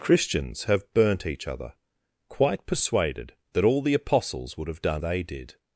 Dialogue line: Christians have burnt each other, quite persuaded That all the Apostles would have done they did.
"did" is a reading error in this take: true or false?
false